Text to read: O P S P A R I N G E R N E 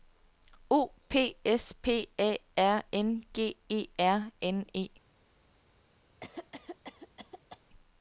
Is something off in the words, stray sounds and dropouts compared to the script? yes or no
yes